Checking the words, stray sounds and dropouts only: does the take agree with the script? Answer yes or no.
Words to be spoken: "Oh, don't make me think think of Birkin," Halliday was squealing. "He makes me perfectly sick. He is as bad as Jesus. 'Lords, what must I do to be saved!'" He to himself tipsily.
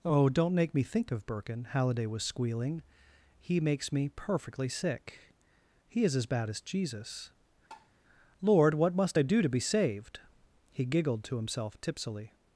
no